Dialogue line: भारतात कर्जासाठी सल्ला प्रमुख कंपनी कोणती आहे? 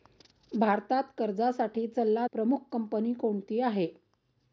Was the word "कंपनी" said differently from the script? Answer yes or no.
no